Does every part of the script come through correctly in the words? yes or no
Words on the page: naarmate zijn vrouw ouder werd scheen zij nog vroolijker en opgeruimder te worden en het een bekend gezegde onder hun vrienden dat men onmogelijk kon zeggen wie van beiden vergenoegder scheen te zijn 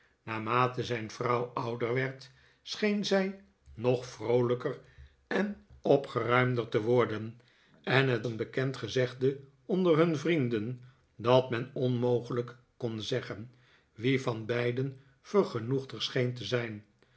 yes